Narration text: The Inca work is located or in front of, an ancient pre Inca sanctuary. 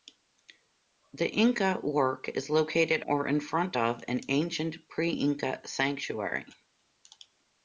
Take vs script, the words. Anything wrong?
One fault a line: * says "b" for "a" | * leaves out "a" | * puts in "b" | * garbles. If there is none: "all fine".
all fine